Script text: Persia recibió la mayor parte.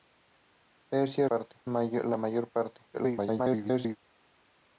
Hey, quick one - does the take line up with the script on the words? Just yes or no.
no